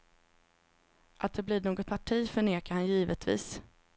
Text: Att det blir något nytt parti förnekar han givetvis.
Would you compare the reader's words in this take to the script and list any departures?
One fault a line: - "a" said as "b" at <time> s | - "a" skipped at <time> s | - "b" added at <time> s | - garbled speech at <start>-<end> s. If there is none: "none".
- "nytt" skipped at 1.9 s